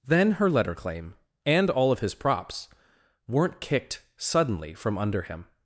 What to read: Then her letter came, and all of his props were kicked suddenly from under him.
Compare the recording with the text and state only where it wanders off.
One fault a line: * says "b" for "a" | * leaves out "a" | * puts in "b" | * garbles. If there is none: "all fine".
* says "claim" for "came"
* says "weren't" for "were"